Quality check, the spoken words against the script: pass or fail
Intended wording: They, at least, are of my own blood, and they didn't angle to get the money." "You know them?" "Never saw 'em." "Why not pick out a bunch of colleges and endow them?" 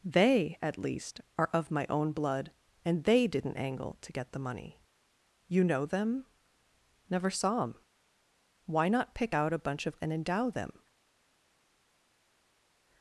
fail